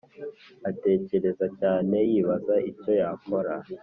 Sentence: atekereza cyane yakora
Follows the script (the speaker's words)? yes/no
no